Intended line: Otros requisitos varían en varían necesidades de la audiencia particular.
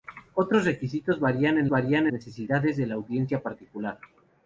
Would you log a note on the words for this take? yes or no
no